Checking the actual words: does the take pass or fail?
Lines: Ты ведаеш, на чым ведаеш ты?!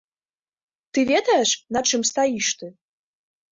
fail